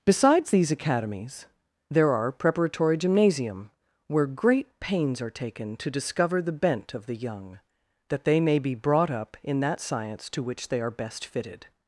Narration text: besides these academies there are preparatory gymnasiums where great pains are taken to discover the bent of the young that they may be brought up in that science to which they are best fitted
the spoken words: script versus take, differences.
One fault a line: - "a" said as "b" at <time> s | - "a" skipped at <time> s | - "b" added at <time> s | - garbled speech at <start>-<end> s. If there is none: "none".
- "gymnasiums" said as "gymnasium" at 3.0 s